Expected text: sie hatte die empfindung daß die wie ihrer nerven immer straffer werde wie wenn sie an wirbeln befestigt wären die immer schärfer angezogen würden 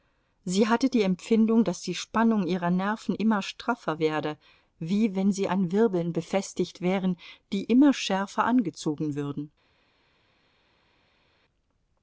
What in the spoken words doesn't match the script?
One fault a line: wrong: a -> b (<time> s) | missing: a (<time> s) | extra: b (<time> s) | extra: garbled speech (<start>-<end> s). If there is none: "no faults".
wrong: wie -> spannung (1.9 s)